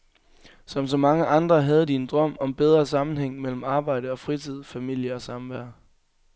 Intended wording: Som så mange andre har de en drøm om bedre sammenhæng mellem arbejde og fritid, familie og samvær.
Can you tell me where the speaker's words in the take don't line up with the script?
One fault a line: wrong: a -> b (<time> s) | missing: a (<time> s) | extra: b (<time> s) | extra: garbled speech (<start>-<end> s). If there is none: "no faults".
wrong: har -> havde (1.6 s)